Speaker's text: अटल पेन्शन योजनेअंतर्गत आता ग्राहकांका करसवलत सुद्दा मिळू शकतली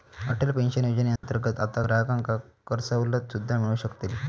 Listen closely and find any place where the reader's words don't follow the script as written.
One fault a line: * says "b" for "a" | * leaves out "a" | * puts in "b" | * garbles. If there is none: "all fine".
all fine